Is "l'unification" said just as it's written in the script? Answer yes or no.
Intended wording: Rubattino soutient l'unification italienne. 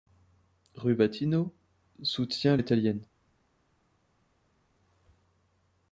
no